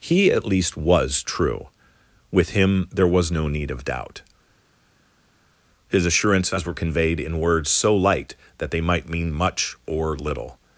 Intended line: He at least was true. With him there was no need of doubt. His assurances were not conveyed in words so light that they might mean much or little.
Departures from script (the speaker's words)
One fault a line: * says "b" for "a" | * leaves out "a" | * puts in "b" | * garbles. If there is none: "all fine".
* leaves out "not"